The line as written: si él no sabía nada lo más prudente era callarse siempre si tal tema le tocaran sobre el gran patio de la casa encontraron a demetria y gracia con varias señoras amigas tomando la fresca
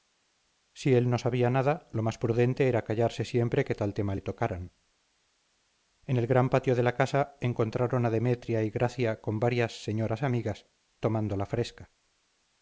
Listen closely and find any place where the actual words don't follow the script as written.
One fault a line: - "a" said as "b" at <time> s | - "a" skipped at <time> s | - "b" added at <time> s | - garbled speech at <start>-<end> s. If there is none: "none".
- "si" said as "que" at 3.6 s
- "sobre" said as "en" at 6.0 s